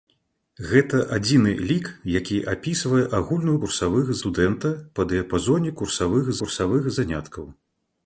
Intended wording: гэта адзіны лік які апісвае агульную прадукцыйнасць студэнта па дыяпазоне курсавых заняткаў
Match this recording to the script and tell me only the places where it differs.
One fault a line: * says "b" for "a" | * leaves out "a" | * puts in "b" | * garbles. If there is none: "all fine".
* says "курсавых" for "прадукцыйнасць"
* puts in "курсавых"